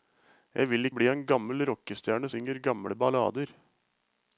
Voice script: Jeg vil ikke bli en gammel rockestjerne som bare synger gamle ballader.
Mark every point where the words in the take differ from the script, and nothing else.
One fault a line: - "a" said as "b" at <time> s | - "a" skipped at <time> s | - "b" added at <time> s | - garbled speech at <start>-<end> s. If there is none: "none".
- "ikke" skipped at 0.9 s
- "som bare" skipped at 2.3 s